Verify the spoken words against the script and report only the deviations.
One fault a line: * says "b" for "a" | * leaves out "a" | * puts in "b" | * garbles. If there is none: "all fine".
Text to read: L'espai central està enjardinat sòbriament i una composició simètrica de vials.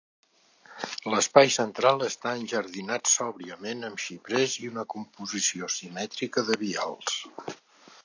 * puts in "amb xiprers"